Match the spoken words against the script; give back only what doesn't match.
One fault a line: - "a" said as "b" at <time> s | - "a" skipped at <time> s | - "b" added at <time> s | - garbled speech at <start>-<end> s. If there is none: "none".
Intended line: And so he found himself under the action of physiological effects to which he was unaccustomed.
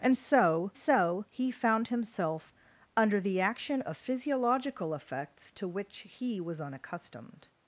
- "so" added at 0.7 s